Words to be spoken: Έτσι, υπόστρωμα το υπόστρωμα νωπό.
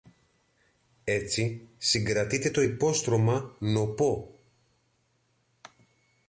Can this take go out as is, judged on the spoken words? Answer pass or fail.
fail